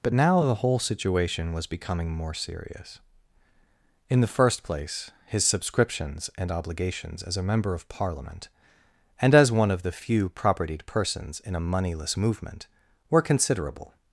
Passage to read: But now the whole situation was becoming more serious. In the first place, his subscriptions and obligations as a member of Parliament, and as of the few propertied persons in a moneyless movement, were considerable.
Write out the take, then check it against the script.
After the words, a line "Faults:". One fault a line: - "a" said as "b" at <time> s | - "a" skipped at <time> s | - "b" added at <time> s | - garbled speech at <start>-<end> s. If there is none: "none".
But now the whole situation was becoming more serious. In the first place, his subscriptions and obligations as a member of Parliament, and as one of the few propertied persons in a moneyless movement, were considerable.
Faults:
- "one" added at 9.5 s